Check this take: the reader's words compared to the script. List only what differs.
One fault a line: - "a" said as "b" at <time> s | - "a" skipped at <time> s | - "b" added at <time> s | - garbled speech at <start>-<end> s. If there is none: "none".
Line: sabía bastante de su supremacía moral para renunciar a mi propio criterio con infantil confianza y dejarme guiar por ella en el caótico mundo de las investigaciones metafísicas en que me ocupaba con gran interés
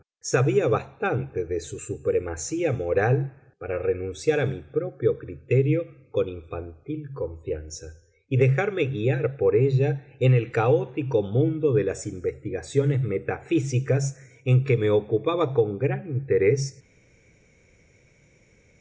none